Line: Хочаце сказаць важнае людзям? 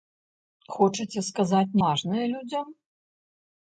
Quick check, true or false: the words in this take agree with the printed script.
true